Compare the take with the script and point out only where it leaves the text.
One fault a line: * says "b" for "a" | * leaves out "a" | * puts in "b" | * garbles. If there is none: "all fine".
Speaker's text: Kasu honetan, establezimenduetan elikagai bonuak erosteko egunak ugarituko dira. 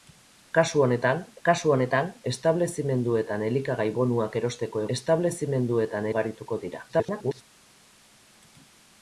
* puts in "kasu honetan"
* says "establezimenduetan" for "egunak"
* garbles